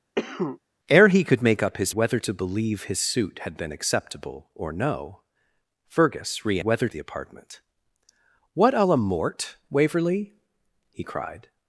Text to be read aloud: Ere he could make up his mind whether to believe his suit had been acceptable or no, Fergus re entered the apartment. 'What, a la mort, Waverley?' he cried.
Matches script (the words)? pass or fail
fail